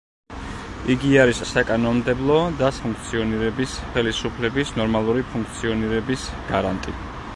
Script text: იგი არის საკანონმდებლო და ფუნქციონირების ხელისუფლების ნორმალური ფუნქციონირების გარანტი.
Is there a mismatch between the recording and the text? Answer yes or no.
no